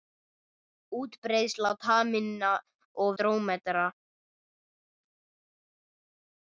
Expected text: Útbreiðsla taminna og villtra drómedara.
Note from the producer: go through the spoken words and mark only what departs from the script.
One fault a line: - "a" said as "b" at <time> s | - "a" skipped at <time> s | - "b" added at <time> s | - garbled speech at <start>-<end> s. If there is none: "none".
- "villtra" skipped at 3.1 s